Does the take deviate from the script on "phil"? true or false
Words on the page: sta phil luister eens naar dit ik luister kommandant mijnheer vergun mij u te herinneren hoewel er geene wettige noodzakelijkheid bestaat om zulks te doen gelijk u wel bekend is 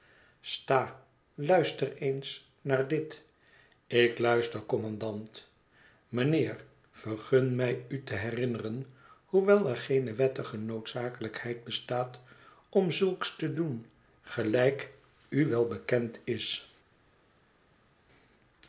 true